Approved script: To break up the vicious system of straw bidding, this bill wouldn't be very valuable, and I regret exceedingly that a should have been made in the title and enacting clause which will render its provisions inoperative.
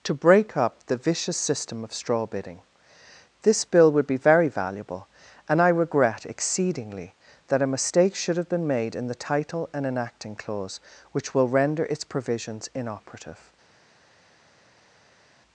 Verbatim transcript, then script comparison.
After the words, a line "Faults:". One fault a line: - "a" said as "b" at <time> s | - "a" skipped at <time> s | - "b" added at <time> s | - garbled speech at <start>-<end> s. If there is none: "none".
To break up the vicious system of straw bidding, this bill would be very valuable, and I regret exceedingly that a mistake should have been made in the title and enacting clause which will render its provisions inoperative.
Faults:
- "wouldn't" said as "would" at 3.9 s
- "mistake" added at 7.7 s